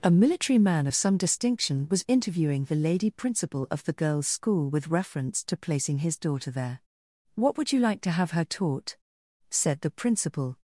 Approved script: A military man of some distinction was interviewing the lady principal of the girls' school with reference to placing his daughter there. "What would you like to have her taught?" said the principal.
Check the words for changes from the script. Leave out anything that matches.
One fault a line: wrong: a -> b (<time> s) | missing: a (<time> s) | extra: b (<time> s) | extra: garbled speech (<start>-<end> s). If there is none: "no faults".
no faults